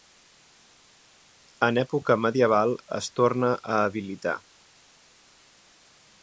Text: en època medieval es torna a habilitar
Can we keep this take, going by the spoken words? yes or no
yes